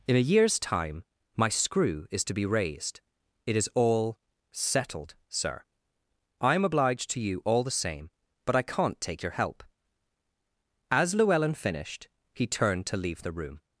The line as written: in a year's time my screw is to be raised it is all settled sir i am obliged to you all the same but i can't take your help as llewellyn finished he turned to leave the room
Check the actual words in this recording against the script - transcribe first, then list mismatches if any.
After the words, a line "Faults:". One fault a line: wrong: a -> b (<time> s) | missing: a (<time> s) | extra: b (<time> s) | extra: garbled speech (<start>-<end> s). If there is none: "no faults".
in a year's time my screw is to be raised it is all settled sir i am obliged to you all the same but i can't take your help as llewellyn finished he turned to leave the room
Faults:
no faults